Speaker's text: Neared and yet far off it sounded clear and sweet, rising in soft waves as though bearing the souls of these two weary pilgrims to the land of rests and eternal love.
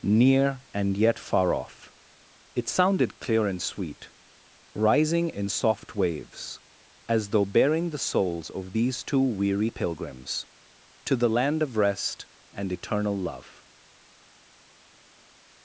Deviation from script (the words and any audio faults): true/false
true